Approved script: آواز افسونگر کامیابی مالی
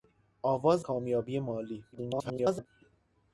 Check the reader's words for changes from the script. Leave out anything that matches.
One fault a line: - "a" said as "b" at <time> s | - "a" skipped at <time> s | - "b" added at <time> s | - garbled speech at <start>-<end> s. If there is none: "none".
- "افسونگر" skipped at 0.8 s
- garbled speech at 1.9-2.7 s